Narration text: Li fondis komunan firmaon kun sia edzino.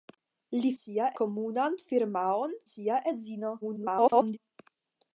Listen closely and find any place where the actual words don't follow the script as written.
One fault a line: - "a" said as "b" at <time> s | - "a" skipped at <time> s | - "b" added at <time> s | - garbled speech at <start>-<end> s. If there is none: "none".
- "fondis" said as "sia" at 0.8 s
- "kun" skipped at 2.6 s
- garbled speech at 3.6-4.4 s